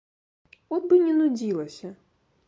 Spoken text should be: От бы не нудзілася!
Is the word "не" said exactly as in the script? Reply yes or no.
yes